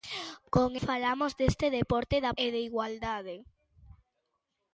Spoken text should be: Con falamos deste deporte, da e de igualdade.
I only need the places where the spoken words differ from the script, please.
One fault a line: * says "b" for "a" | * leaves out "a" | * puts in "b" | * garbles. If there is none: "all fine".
all fine